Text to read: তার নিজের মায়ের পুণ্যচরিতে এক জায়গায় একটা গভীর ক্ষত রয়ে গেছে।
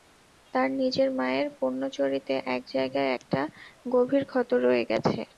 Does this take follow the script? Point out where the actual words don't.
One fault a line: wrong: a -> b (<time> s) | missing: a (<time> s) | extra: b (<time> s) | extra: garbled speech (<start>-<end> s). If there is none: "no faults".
no faults